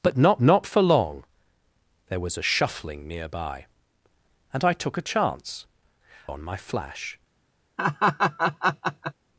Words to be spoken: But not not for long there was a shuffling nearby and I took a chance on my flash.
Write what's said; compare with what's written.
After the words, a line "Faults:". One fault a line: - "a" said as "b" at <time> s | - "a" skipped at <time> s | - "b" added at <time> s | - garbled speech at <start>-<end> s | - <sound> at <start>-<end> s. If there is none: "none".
But not not for long there was a shuffling nearby and I took a chance on my flash.
Faults:
- laugh at 7.8-9.1 s